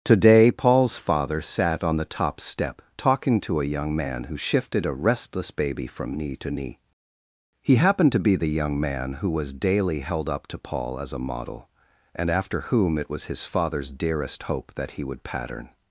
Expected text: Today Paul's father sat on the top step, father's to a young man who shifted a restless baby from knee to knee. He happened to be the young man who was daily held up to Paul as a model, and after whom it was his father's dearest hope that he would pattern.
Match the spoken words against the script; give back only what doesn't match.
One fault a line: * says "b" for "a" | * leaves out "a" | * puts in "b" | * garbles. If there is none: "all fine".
* says "talking" for "father's"